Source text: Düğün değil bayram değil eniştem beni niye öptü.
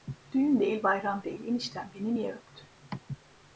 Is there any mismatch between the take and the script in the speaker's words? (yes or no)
no